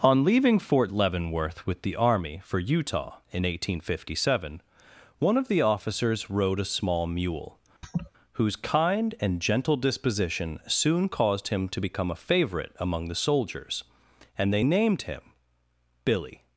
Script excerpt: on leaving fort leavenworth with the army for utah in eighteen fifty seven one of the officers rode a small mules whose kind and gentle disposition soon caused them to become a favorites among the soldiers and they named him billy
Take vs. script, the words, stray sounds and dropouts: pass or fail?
fail